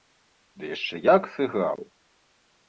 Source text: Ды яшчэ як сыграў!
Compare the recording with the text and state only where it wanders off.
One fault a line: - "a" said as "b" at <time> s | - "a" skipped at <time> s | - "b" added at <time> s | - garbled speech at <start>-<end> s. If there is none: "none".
none